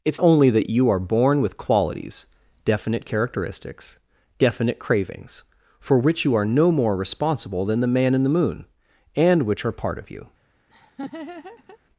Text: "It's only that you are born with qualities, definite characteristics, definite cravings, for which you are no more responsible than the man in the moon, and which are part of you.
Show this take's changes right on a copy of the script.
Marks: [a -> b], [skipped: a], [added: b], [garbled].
"It's only that you are born with qualities, definite characteristics, definite cravings, for which you are no more responsible than the man in the moon, and which are part of you.